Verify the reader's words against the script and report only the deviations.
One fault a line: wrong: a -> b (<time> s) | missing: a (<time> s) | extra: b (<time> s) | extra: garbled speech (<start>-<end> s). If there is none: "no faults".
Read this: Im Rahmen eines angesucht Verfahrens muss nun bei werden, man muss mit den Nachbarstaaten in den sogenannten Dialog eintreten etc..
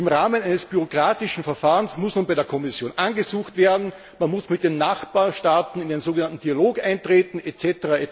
wrong: angesucht -> bürokratischen (0.7 s)
extra: der Kommission angesucht (2.3 s)